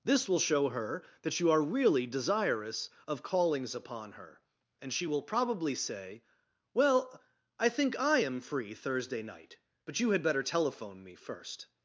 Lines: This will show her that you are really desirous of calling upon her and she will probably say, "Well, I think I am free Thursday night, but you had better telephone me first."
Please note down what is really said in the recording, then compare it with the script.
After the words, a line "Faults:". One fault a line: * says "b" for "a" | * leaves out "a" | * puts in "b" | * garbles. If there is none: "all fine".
This will show her that you are really desirous of callings upon her and she will probably say, "Well, I think I am free Thursday night, but you had better telephone me first."
Faults:
* says "callings" for "calling"